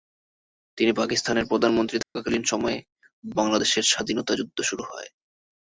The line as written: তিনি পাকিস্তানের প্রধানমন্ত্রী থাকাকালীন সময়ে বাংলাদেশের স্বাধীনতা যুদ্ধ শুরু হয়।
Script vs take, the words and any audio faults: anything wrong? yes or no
yes